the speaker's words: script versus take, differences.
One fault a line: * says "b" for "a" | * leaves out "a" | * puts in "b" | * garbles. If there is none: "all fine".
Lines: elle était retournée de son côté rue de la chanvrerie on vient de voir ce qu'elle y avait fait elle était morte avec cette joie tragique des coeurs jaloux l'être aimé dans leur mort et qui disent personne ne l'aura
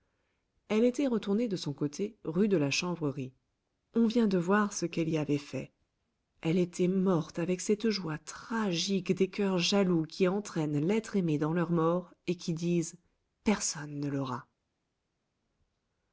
* puts in "qui entraînent"